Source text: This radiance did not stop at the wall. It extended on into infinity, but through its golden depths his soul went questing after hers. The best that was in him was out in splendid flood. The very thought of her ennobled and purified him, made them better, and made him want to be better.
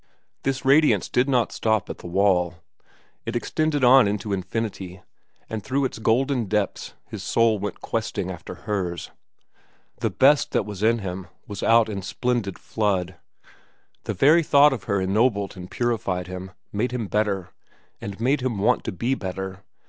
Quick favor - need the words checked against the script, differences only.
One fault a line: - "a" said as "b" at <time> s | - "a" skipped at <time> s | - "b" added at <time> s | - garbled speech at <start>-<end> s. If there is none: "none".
- "but" said as "and" at 5.5 s
- "them" said as "him" at 16.9 s